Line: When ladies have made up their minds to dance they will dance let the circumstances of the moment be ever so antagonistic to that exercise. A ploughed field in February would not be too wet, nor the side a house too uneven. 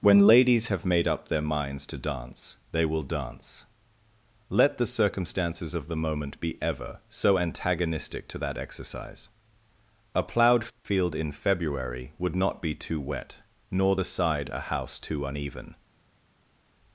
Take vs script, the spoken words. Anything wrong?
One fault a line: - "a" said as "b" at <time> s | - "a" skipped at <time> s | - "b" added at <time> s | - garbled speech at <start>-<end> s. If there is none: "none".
none